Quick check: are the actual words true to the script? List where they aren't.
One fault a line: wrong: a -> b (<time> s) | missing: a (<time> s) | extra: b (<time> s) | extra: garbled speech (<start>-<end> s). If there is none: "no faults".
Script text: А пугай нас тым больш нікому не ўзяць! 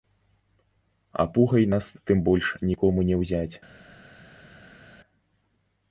no faults